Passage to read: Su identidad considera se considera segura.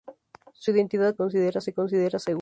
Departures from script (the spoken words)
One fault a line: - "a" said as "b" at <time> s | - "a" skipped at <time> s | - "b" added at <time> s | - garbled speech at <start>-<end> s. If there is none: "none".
none